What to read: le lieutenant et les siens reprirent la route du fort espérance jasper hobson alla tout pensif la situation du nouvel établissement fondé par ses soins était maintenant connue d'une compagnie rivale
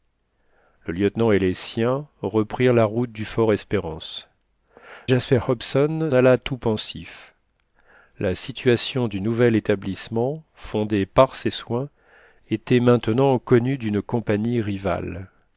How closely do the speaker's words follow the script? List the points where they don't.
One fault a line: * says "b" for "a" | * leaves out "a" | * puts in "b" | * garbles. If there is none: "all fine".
all fine